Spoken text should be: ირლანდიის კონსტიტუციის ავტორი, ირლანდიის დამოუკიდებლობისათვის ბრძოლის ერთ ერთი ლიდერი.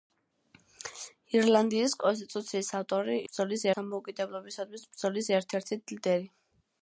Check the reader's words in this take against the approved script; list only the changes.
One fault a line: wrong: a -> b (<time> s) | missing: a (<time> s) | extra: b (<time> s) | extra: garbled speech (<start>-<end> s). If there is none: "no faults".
wrong: ირლანდიის -> ბრძოლის (3.3 s)